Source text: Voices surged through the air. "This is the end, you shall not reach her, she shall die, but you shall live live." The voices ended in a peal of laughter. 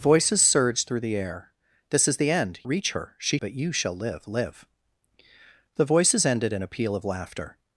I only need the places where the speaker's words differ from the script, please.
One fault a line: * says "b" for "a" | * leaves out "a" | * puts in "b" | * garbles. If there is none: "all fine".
* leaves out "you shall not"
* leaves out "shall die"